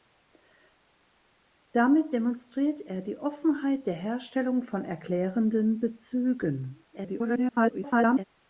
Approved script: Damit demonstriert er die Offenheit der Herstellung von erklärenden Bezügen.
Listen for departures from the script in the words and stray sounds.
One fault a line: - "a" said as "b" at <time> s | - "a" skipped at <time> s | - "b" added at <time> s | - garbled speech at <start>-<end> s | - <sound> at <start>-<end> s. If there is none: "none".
- garbled speech at 6.9-8.2 s